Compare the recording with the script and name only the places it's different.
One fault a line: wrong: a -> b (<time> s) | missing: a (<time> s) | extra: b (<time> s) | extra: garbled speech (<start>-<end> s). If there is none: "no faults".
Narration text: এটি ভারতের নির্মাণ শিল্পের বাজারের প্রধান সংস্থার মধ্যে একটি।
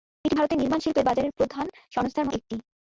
missing: মধ্যে (2.3 s)